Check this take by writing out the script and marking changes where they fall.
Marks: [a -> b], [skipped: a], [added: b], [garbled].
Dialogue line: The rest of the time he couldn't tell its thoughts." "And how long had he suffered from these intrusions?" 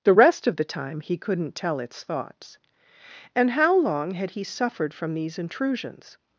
The rest of the time he couldn't tell its thoughts." "And how long had he suffered from these intrusions?"